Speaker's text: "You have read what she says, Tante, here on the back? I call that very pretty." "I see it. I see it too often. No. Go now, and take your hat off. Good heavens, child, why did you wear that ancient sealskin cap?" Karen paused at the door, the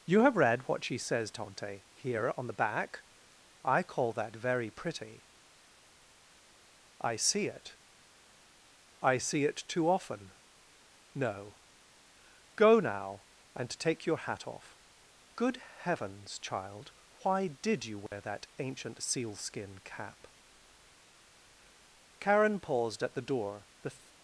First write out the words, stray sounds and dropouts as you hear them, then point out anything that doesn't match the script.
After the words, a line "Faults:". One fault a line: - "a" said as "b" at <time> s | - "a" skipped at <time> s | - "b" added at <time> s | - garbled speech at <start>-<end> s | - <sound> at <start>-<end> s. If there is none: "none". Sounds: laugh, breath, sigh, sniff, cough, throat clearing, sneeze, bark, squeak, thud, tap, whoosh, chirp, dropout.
"You have read what she says, Tante, here on the back? I call that very pretty." "I see it. I see it too often. No. Go now, and take your hat off. Good heavens, child, why did you wear that ancient sealskin cap?" Karen paused at the door, the
Faults:
- dropout at 18.1-18.1 s